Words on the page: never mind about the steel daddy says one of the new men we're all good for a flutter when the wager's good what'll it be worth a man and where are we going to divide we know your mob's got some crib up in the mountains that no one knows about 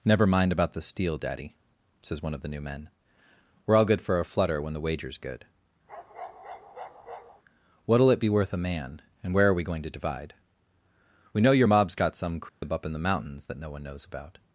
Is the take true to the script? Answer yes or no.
yes